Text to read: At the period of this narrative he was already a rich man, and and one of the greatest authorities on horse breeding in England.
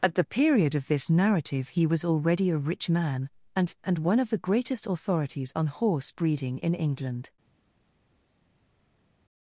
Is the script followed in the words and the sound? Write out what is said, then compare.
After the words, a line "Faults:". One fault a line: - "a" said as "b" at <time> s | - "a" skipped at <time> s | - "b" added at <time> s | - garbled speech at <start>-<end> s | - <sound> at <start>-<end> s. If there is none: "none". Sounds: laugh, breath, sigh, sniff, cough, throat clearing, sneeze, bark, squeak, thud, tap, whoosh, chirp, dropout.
At the period of this narrative he was already a rich man, and and one of the greatest authorities on horse breeding in England.
Faults:
none